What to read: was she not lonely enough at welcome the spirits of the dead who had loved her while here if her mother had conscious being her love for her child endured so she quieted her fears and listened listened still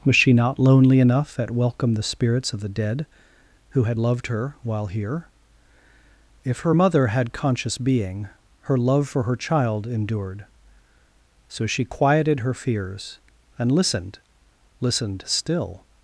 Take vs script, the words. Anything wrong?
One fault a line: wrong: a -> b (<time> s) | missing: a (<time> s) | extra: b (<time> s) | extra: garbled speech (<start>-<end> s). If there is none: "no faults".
no faults